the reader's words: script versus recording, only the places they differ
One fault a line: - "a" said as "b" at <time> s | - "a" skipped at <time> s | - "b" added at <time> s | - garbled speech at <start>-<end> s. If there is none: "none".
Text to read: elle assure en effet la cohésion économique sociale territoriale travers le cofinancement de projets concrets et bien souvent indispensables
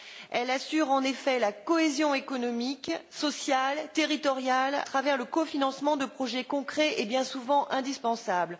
none